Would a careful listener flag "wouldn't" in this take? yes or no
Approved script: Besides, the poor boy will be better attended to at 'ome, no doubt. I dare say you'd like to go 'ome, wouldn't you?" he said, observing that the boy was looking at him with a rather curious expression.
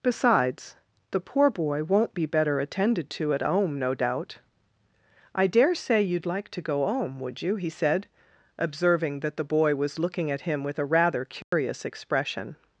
yes